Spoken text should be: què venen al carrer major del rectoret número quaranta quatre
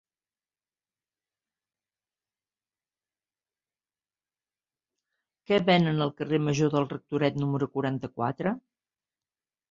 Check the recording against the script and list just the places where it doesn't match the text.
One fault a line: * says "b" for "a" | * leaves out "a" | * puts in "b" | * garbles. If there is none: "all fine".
all fine